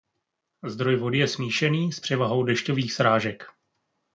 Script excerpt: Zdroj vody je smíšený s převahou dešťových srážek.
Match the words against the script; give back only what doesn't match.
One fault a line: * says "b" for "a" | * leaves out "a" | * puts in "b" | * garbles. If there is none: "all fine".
all fine